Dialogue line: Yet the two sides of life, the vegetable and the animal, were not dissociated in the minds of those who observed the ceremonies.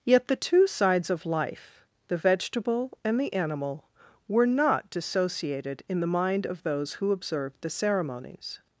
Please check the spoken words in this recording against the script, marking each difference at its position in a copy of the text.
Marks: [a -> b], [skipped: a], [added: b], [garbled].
Yet the two sides of life, the vegetable and the animal, were not dissociated in the [minds -> mind] of those who observed the ceremonies.